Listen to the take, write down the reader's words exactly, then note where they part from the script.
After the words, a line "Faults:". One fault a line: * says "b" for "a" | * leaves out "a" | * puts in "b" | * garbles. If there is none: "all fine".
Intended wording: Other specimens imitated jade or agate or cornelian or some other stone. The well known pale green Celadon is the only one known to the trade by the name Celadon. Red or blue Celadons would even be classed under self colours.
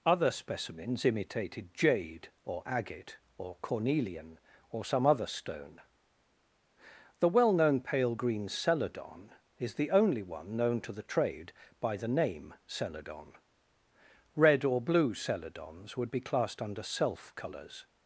Other specimens imitated jade or agate or cornelian or some other stone. The well known pale green Celadon is the only one known to the trade by the name Celadon. Red or blue Celadons would be classed under self colours.
Faults:
* leaves out "even"